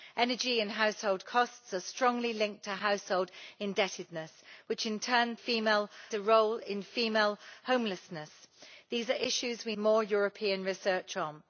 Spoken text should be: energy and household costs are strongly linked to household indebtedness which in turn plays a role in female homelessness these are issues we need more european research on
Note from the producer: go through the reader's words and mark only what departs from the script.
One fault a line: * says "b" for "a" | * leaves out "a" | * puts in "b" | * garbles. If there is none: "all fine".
* says "female" for "plays"
* leaves out "need"